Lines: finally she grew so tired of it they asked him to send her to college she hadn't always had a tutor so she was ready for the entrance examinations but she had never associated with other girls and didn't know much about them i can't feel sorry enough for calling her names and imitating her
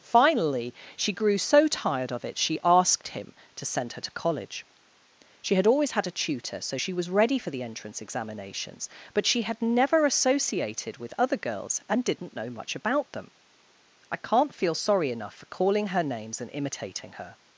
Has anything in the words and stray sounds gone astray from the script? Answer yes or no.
yes